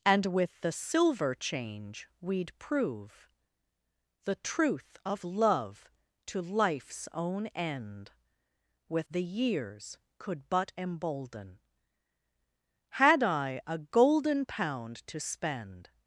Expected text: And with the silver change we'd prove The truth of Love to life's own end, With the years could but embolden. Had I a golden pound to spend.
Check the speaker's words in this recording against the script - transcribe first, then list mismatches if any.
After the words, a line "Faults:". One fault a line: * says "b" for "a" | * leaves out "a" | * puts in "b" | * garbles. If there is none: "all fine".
And with the silver change we'd prove The truth of Love to life's own end, With the years could but embolden. Had I a golden pound to spend.
Faults:
all fine